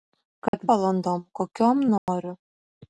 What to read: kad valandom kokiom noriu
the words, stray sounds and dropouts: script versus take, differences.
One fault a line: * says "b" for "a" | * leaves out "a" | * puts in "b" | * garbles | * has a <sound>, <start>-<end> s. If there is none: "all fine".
* has a dropout, 0.5-0.5 s
* has a dropout, 2.0-2.1 s